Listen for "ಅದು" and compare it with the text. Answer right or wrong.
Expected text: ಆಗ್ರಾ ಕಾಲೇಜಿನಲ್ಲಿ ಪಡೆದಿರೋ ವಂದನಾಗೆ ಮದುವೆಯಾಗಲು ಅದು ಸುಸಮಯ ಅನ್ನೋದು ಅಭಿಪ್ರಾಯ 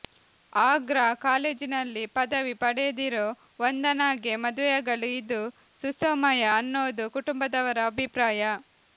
wrong